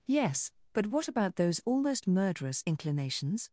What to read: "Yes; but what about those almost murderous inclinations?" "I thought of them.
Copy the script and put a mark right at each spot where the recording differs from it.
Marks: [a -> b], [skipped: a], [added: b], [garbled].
"Yes; but what about those almost murderous inclinations?" [skipped: "I thought of them.]